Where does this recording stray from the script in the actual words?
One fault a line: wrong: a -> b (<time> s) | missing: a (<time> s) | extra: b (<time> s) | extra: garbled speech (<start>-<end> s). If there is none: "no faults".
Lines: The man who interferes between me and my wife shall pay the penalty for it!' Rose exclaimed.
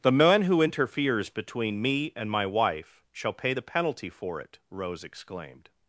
no faults